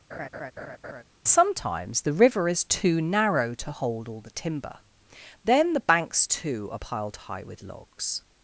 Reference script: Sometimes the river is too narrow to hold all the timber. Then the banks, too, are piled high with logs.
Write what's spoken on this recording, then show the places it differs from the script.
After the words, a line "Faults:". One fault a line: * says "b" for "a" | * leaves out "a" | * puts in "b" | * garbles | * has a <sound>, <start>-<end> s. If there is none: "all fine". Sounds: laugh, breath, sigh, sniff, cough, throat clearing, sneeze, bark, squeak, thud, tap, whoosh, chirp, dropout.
Sometimes the river is too narrow to hold all the timber. Then the banks, too, are piled high with logs.
Faults:
* has a laugh, 0.1-1.0 s